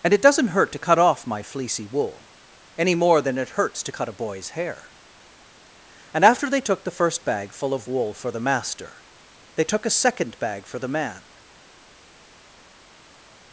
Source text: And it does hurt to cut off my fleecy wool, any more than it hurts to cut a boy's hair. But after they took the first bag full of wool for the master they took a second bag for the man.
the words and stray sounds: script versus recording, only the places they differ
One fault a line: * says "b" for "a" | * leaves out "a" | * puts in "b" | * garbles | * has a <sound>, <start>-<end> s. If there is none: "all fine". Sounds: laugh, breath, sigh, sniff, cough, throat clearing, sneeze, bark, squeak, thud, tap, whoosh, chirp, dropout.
* says "doesn't" for "does"
* says "And" for "But"